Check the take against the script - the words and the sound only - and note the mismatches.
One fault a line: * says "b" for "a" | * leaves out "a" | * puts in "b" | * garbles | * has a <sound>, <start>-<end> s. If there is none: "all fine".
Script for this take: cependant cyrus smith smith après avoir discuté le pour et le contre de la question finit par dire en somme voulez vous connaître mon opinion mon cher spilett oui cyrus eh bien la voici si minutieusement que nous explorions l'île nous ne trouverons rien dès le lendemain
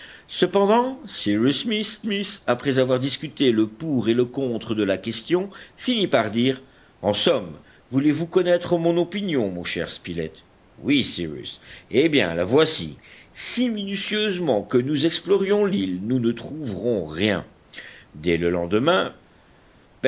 all fine